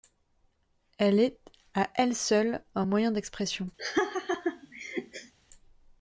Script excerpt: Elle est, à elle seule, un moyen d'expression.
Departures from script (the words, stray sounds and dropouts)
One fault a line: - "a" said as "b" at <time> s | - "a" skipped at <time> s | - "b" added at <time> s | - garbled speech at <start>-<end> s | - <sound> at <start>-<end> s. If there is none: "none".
- laugh at 3.8-5.3 s